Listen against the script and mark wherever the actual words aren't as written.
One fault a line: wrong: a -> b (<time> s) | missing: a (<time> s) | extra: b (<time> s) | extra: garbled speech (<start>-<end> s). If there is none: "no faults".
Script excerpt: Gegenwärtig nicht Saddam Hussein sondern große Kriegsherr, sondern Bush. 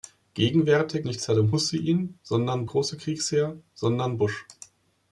no faults